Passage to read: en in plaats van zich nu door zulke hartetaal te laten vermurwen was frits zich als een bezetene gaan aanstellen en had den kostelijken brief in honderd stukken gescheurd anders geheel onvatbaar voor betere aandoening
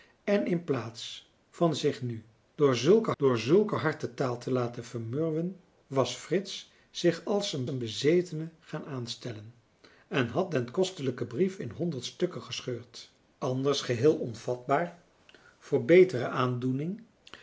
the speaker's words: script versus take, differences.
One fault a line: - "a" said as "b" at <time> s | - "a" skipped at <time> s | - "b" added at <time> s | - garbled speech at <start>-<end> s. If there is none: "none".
- "door zulke" added at 3.2 s
- "een" added at 7.7 s